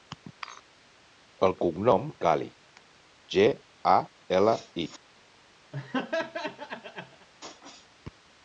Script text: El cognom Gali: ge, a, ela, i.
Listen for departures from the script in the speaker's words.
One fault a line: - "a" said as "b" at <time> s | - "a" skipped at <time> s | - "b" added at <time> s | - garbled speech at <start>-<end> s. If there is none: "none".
none